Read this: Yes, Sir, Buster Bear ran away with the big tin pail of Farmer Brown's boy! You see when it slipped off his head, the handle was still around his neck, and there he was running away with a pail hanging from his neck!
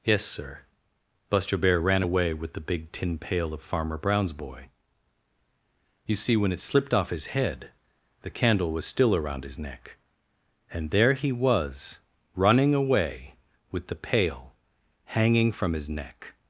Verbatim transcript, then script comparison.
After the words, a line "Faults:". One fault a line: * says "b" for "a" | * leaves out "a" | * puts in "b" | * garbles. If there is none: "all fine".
Yes, Sir, Buster Bear ran away with the big tin pail of Farmer Brown's boy! You see when it slipped off his head, the candle was still around his neck, and there he was running away with the pail hanging from his neck!
Faults:
* says "candle" for "handle"
* says "the" for "a"